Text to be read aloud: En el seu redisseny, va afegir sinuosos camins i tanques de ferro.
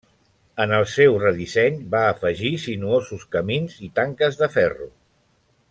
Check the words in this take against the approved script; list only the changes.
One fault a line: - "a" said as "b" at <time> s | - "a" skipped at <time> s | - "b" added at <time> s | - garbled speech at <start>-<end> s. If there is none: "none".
none